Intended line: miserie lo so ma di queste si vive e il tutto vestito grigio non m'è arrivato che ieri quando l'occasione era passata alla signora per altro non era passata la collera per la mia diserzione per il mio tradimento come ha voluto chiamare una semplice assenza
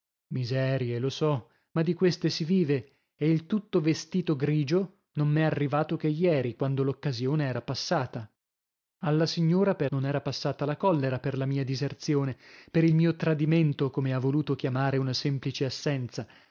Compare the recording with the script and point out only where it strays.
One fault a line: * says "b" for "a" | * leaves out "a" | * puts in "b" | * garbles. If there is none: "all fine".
* leaves out "altro"